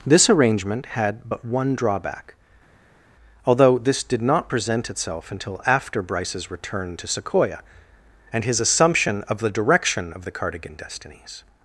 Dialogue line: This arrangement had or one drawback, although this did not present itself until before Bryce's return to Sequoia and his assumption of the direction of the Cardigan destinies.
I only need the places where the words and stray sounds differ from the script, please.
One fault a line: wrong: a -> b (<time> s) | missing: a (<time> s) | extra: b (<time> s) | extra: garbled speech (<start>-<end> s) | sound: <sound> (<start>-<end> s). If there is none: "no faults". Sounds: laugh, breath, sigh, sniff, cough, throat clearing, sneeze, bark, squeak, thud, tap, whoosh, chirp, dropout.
wrong: or -> but (1.3 s)
wrong: before -> after (5.6 s)